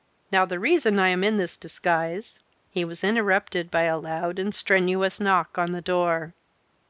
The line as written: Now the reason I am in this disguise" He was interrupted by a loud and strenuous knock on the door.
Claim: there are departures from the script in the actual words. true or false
false